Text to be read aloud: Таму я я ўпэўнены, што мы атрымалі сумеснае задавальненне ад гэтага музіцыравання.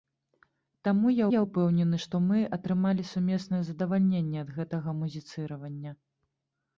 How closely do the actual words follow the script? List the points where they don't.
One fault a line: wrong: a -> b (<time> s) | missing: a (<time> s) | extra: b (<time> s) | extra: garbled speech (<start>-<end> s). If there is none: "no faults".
no faults